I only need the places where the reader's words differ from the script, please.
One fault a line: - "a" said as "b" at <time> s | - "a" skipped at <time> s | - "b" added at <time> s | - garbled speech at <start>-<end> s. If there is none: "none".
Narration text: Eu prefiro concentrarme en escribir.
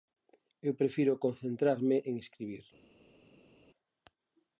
none